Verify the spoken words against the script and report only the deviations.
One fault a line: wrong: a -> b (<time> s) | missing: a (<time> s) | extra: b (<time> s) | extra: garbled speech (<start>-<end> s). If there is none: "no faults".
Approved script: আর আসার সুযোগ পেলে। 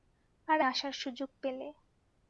no faults